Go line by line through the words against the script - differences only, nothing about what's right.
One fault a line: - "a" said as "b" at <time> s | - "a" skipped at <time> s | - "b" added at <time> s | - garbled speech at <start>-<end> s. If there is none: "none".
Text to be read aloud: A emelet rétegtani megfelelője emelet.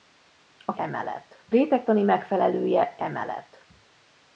none